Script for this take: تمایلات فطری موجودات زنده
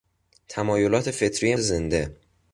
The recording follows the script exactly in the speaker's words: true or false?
false